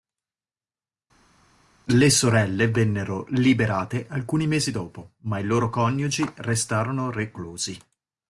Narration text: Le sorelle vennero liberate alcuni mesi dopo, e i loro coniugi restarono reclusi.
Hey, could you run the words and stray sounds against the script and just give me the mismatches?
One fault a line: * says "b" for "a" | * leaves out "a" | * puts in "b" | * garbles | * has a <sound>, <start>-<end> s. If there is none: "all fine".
* says "ma" for "e"